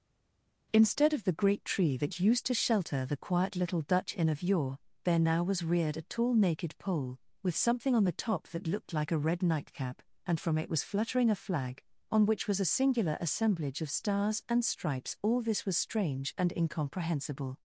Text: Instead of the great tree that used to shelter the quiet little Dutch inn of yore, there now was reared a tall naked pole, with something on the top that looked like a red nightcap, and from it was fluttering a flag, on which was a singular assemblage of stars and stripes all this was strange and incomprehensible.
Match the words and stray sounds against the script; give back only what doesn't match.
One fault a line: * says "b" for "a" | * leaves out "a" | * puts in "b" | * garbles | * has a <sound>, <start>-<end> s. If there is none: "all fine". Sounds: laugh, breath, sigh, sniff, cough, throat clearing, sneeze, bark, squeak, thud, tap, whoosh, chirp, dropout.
all fine